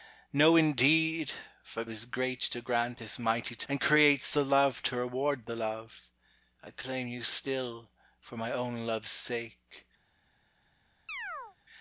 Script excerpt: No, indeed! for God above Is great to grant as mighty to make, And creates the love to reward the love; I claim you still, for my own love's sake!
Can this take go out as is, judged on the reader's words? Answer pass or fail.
fail